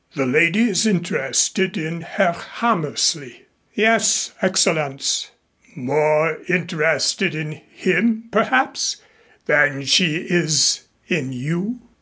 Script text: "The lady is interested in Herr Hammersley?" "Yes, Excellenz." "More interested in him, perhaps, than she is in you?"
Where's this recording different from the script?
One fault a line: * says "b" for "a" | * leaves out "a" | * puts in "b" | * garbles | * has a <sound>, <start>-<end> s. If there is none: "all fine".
all fine